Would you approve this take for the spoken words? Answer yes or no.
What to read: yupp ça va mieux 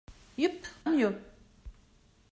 no